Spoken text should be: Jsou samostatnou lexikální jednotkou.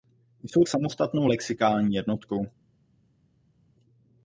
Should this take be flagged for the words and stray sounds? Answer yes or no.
no